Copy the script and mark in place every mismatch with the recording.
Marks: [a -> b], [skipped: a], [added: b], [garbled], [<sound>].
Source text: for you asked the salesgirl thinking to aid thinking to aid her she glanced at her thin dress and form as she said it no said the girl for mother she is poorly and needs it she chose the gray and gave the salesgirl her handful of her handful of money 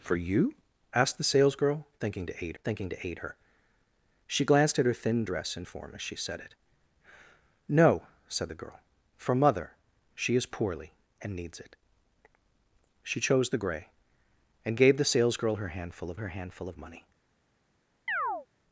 for you asked the salesgirl thinking to aid thinking to aid her she glanced at her thin dress and form as she said it no said the girl for mother she is poorly and needs it she chose the gray and gave the salesgirl her handful of her handful of money [chirp]